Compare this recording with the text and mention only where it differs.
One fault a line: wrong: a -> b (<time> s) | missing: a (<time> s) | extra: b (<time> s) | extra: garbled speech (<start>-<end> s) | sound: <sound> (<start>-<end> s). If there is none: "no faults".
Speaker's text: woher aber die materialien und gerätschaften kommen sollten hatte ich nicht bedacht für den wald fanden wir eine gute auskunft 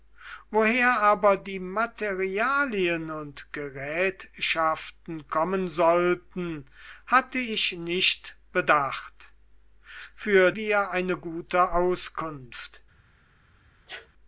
missing: den wald fanden (10.5 s)
sound: sneeze (13.9-14.1 s)